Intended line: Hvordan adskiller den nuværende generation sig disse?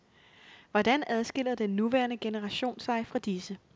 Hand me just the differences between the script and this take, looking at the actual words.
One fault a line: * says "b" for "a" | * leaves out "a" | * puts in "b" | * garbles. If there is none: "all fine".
* puts in "fra"